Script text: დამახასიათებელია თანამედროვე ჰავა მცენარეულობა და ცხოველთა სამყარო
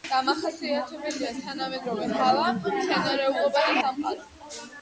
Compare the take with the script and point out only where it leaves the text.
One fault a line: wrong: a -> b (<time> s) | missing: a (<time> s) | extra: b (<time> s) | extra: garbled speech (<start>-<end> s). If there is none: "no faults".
missing: ცხოველთა (3.8 s)